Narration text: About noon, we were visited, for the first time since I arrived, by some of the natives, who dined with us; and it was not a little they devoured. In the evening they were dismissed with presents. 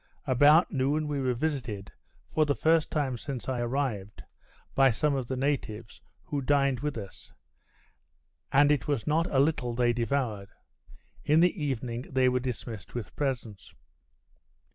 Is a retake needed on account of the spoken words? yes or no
no